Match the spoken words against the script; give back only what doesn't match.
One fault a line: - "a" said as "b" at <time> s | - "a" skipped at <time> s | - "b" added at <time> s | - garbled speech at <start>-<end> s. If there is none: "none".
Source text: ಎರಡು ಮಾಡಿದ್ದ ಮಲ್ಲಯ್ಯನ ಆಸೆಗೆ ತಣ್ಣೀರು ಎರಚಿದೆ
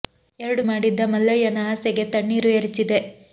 none